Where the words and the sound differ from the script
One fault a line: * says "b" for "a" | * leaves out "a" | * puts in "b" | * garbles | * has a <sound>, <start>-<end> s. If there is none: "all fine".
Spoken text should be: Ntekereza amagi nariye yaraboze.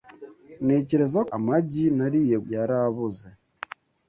all fine